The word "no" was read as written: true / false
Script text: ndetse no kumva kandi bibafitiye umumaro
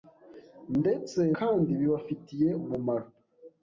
false